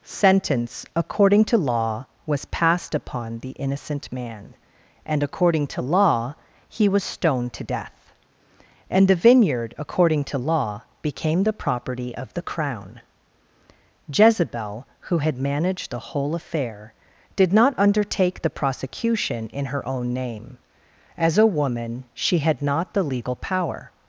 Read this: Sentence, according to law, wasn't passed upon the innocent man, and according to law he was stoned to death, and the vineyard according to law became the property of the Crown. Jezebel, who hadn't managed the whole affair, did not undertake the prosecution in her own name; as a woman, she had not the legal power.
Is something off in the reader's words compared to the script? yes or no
yes